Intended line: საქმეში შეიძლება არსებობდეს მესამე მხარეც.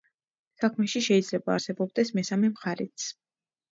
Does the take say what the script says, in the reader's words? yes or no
yes